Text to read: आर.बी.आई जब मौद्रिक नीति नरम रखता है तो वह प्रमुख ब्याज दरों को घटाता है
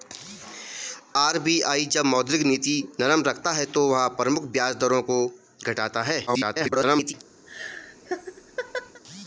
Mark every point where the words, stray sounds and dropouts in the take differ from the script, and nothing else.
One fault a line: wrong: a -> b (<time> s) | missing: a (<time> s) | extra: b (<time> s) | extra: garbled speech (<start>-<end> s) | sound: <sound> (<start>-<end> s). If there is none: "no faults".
extra: garbled speech (6.3-7.1 s)
sound: laugh (7.5-9.0 s)